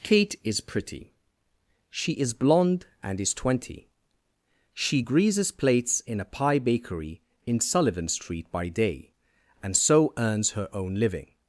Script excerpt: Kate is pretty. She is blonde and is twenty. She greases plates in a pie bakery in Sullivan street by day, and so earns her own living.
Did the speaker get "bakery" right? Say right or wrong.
right